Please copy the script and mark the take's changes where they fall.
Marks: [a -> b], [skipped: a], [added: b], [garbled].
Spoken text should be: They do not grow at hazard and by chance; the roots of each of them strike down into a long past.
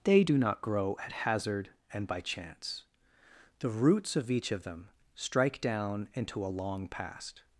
They do not grow at hazard and by chance; the roots of each of them strike down into a long past.